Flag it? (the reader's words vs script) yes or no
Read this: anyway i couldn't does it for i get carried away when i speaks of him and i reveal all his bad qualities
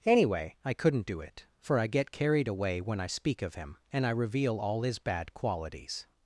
yes